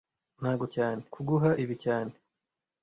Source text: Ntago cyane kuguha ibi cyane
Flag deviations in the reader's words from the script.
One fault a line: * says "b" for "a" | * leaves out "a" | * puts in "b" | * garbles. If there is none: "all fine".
all fine